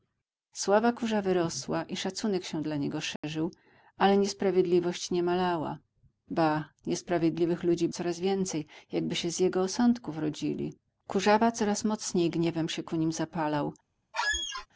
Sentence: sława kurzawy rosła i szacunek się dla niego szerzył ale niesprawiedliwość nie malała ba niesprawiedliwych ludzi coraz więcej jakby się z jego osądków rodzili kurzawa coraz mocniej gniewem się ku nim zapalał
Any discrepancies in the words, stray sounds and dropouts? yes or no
yes